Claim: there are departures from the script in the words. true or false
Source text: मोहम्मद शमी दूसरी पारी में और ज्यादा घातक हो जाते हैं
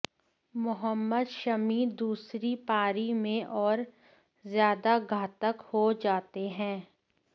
false